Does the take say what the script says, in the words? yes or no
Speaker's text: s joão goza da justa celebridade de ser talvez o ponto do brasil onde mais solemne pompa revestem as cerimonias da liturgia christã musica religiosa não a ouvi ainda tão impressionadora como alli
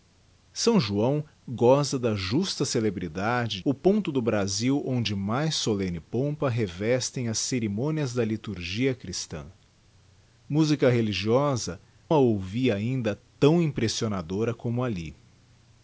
no